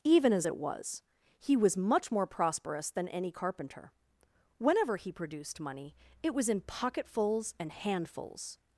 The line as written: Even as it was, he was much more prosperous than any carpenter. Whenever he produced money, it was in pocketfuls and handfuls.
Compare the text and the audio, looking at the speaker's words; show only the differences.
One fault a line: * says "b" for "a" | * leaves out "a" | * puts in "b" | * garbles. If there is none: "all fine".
all fine